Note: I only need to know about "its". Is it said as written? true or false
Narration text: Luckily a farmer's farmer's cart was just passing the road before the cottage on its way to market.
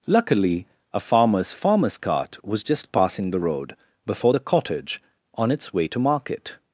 true